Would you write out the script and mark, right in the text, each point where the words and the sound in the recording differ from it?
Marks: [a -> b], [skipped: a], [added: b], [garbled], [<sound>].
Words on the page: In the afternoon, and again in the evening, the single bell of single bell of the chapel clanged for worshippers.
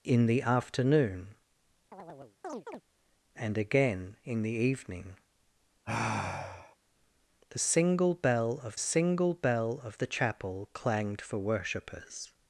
In the afternoon, [chirp] and again in the evening, [sigh] the single bell of single bell of the chapel clanged for worshippers.